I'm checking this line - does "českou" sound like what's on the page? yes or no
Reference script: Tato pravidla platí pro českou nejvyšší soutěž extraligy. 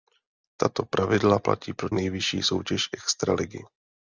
no